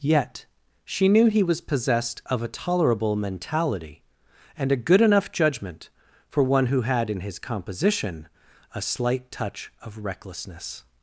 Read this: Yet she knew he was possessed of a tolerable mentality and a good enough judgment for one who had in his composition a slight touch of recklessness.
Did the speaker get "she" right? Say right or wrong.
right